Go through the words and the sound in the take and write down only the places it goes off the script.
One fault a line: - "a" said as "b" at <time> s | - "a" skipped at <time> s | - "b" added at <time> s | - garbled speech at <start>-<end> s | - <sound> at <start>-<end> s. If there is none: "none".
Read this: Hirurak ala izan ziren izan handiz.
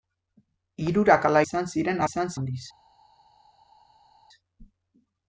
none